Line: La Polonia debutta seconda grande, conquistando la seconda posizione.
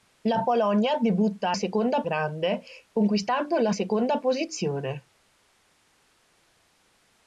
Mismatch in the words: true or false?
false